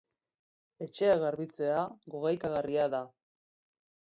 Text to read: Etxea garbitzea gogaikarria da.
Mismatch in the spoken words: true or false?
false